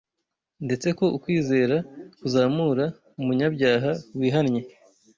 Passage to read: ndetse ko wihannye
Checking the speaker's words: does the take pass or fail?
fail